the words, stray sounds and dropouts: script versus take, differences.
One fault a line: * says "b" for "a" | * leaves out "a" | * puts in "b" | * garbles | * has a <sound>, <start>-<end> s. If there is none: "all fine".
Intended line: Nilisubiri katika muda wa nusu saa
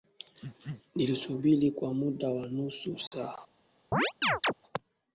* says "kwa" for "katika"
* has a dropout, 3.1-3.1 s
* has a chirp, 3.9-4.5 s